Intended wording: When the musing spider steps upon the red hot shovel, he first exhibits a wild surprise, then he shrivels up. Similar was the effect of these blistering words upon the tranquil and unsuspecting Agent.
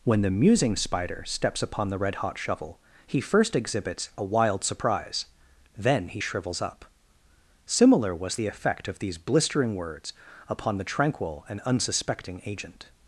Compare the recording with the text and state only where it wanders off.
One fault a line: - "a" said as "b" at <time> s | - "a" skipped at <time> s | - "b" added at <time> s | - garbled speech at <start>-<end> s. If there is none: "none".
none